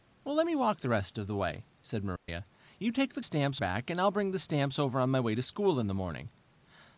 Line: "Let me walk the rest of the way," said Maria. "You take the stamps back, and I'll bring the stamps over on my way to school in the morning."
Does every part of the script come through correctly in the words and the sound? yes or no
no